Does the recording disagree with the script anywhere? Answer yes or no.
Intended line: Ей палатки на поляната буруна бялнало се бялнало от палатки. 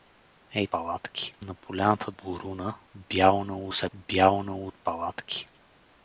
no